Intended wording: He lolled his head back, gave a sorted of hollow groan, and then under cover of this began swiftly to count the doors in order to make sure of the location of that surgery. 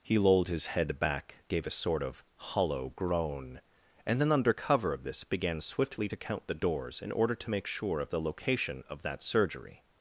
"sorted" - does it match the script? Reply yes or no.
no